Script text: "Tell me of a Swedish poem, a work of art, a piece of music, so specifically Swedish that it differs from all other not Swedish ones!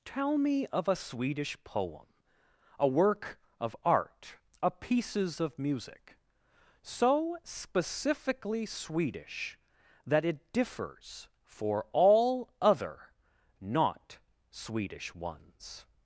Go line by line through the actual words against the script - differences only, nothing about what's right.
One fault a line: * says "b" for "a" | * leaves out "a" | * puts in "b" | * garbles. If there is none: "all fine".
* says "pieces" for "piece"
* says "for" for "from"